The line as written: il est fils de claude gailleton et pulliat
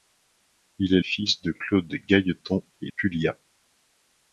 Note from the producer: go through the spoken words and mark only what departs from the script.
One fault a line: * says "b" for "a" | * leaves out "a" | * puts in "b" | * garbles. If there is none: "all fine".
all fine